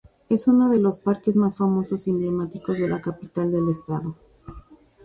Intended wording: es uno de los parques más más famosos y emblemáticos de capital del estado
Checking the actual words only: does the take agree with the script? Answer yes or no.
no